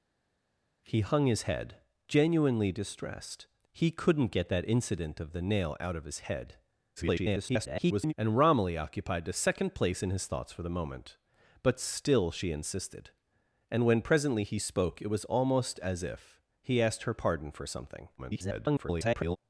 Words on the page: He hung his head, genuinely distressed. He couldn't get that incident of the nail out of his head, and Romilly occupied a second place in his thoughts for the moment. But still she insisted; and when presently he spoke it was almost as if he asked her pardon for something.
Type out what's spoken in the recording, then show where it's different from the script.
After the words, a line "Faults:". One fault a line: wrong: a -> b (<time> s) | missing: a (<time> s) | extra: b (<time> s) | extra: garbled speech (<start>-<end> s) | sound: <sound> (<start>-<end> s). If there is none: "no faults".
He hung his head, genuinely distressed. He couldn't get that incident of the nail out of his head, [garbled] and Romilly occupied a second place in his thoughts for the moment. But still she insisted; and when presently he spoke it was almost as if he asked her pardon for something. [garbled]
Faults:
extra: garbled speech (7.0-8.1 s)
extra: garbled speech (18.2-19.4 s)